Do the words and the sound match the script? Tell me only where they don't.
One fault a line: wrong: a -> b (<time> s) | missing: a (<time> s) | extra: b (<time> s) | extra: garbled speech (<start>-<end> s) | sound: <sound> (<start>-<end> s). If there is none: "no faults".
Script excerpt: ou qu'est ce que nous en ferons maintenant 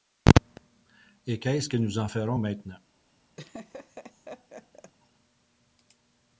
wrong: ou -> et (1.3 s)
sound: laugh (3.4-4.9 s)